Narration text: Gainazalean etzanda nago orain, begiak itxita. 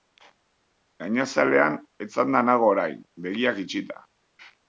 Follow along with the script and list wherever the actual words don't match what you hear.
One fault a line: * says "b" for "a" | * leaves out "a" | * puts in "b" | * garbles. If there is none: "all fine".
all fine